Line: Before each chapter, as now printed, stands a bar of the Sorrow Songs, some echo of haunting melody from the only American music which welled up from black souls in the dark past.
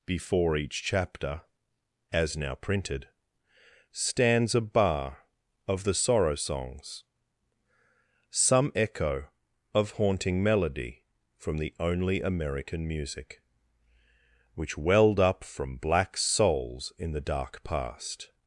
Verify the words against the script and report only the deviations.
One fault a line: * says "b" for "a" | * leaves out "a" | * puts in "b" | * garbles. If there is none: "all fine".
all fine